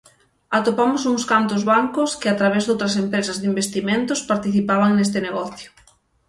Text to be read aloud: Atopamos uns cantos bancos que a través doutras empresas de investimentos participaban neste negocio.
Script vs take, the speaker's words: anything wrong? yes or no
no